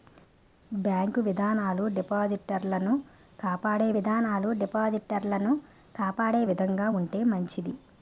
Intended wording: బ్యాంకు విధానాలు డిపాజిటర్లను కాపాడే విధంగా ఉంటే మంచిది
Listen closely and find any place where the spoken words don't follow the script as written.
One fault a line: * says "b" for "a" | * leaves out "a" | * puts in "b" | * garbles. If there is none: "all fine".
* puts in "విధానాలు డిపాజిటర్లను కాపాడే"